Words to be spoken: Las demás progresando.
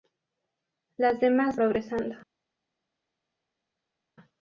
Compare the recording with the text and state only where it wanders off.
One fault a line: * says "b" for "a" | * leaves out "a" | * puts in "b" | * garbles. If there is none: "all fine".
all fine